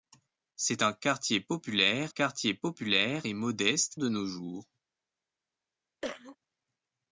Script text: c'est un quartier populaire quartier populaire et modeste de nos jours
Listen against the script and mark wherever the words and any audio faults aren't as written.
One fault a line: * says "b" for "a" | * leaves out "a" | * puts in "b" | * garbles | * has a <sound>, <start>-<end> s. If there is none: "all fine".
* has a cough, 6.0-6.4 s